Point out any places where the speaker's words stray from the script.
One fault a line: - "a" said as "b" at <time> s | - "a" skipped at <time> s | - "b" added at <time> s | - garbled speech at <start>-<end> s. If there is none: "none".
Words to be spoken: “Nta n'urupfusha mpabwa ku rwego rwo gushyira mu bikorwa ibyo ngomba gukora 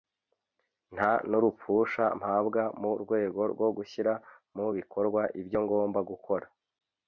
- "ku" said as "mu" at 2.8 s